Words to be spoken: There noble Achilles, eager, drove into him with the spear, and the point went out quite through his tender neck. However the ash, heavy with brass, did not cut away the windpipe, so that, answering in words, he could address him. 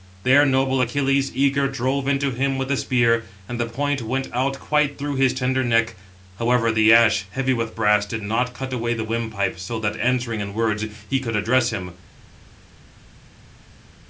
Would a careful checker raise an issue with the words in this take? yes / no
no